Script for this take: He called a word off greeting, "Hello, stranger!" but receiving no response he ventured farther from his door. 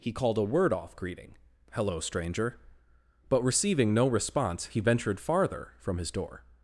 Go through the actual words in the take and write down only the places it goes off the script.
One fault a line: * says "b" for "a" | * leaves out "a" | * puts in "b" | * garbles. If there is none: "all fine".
all fine